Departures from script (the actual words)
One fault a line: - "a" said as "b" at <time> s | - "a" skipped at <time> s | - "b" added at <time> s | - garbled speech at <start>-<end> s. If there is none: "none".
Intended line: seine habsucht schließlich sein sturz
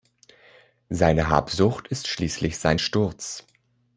- "ist" added at 1.9 s